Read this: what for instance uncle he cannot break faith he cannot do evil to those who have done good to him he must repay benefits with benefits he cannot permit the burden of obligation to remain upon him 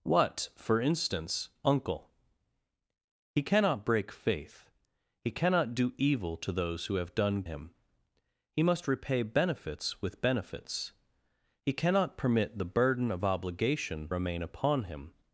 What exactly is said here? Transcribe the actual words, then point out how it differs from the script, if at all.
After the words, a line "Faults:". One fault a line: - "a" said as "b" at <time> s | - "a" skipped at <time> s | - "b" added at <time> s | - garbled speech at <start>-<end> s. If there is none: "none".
what for instance uncle he cannot break faith he cannot do evil to those who have done him he must repay benefits with benefits he cannot permit the burden of obligation remain upon him
Faults:
- "good to" skipped at 7.4 s
- "to" skipped at 14.1 s